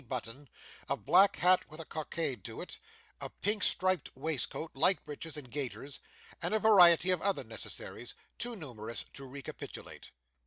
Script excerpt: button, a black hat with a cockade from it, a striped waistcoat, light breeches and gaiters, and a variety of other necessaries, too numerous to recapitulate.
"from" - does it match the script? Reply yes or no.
no